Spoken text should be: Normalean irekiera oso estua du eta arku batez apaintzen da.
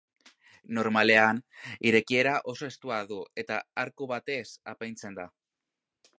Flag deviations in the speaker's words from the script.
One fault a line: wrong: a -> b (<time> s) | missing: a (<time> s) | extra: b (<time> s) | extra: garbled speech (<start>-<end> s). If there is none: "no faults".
no faults